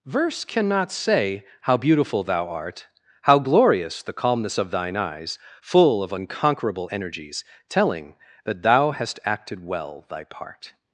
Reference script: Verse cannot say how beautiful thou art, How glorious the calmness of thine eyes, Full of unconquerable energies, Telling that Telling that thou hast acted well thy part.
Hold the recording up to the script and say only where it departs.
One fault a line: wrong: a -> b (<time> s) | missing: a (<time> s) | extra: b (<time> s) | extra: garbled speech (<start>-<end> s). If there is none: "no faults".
missing: Telling that (8.6 s)